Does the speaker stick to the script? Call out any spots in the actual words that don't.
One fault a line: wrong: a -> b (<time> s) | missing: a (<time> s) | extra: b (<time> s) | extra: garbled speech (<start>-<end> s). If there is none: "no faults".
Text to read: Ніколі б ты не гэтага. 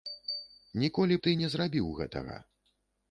extra: зрабіў (1.5 s)